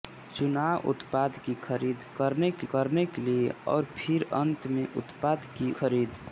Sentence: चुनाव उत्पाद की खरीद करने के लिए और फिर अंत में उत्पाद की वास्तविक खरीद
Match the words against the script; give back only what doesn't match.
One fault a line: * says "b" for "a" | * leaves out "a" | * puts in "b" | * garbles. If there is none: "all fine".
* puts in "करने के"
* leaves out "वास्तविक"